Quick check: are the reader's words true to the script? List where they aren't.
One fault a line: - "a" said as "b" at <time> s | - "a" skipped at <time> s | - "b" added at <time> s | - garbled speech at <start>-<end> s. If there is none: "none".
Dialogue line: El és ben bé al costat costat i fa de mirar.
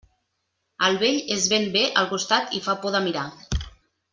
- "vell" added at 1.0 s
- "costat" skipped at 2.5 s
- "por" added at 2.8 s